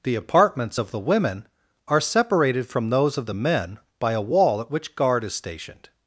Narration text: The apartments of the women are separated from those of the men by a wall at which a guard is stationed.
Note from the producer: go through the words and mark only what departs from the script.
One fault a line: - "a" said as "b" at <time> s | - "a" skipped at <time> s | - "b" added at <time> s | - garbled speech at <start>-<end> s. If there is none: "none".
- "a" skipped at 5.0 s